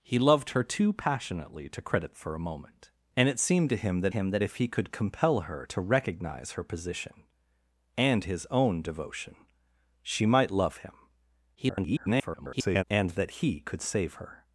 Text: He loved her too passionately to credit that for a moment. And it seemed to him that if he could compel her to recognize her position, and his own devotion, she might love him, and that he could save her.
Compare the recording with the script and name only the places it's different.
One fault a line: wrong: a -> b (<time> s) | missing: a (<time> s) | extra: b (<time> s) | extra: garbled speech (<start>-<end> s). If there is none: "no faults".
missing: that (2.1 s)
extra: him that (4.1 s)
extra: garbled speech (11.5-12.8 s)